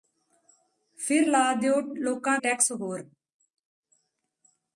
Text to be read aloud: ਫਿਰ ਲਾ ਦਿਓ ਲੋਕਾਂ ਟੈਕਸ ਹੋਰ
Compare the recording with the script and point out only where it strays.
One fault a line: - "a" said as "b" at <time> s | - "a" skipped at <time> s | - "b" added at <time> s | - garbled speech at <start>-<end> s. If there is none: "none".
none